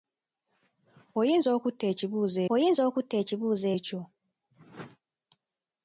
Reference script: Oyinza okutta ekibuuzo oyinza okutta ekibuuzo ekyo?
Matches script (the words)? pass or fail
pass